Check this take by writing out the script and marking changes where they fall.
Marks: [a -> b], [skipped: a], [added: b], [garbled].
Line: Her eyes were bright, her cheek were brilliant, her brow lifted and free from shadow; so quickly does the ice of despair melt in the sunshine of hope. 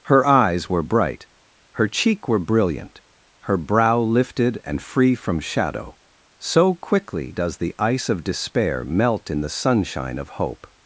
Her eyes were bright, her cheek were brilliant, her brow lifted and free from shadow; so quickly does the ice of despair melt in the sunshine of hope.